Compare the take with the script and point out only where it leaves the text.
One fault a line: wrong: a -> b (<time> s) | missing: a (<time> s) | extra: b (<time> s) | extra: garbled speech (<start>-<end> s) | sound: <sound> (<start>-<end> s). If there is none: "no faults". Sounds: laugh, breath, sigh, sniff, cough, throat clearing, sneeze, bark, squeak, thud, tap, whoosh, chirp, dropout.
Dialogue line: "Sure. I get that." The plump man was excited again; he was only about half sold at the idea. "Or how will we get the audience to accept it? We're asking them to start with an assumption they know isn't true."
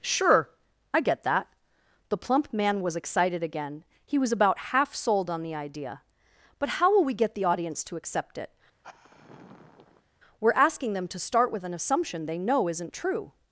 missing: only (4.3 s)
wrong: at -> on (5.3 s)
wrong: Or -> But (6.6 s)
sound: sigh (8.8-10.1 s)